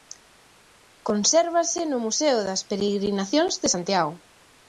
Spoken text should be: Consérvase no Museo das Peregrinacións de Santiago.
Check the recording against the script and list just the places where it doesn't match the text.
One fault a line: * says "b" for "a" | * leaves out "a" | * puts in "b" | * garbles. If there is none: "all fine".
all fine